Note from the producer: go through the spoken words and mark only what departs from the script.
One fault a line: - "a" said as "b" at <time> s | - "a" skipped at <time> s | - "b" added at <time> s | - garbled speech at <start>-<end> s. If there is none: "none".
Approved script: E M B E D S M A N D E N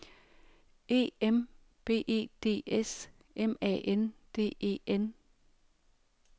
none